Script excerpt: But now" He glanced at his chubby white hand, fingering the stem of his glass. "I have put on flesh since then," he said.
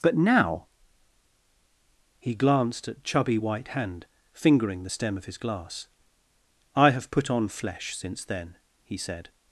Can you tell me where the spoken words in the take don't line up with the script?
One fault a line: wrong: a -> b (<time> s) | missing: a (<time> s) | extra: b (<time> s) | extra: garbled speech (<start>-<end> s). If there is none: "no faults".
missing: his (3.0 s)